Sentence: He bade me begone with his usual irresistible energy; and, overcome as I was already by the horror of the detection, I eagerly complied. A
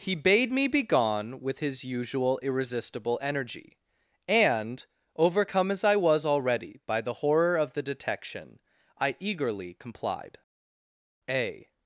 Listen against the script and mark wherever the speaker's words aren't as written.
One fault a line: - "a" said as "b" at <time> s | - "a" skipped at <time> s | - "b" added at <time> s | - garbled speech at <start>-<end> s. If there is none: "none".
none